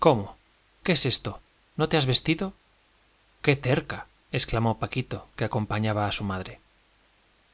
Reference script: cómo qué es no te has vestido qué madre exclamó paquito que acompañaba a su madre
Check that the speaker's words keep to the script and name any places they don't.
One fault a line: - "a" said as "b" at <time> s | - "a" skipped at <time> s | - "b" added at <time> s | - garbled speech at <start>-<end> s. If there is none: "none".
- "esto" added at 1.1 s
- "madre" said as "terca" at 3.5 s